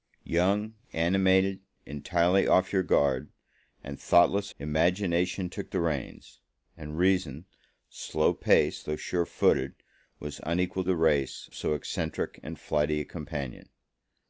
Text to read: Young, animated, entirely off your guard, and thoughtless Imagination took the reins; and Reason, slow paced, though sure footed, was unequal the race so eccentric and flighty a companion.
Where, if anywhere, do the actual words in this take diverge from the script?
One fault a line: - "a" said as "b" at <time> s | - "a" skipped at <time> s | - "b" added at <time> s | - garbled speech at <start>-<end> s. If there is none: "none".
none